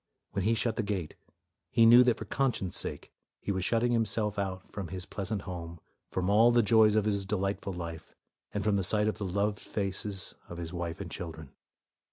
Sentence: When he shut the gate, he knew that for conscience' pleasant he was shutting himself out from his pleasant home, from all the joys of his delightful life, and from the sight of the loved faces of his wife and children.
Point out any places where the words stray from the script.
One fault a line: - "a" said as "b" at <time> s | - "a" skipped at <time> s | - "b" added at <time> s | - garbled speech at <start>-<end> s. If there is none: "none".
- "pleasant" said as "sake" at 2.8 s